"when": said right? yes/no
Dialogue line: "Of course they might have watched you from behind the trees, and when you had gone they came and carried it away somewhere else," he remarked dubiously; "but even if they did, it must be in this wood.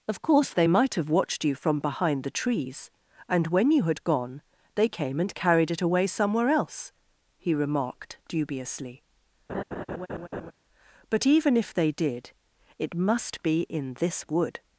yes